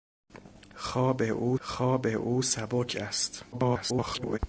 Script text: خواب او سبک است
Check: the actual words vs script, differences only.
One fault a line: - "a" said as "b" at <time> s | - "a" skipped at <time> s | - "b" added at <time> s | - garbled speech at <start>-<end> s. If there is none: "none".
- "خواب او" added at 1.6 s
- garbled speech at 3.5-4.4 s